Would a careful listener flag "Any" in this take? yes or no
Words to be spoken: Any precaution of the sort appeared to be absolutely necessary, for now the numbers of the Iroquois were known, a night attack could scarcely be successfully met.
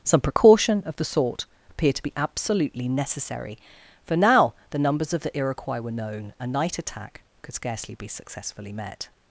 yes